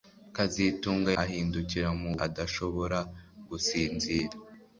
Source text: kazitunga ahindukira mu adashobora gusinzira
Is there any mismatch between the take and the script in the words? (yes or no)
no